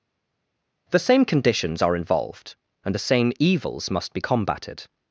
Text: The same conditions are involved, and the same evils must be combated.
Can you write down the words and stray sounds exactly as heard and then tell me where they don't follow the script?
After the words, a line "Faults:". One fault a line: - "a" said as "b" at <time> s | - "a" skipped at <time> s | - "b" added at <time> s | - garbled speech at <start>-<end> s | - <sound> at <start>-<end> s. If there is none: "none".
The same conditions are involved, and the same evils must be combated.
Faults:
none